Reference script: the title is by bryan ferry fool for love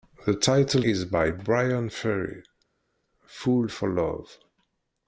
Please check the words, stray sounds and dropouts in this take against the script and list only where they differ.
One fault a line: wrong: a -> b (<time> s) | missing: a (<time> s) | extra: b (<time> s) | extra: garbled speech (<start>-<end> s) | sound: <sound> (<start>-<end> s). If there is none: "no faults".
no faults